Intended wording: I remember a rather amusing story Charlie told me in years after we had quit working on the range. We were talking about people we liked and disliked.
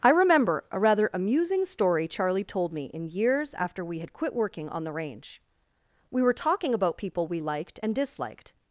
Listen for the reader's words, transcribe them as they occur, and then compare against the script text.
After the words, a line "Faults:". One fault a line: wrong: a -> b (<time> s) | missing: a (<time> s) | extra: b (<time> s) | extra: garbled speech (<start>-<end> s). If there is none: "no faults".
I remember a rather amusing story Charlie told me in years after we had quit working on the range. We were talking about people we liked and disliked.
Faults:
no faults